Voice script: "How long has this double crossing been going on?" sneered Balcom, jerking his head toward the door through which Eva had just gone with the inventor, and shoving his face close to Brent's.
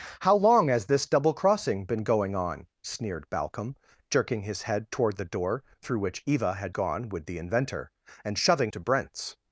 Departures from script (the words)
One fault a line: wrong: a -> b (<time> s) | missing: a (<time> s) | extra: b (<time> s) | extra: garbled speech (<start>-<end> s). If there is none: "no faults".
missing: just (6.7 s)
missing: his face close (8.7 s)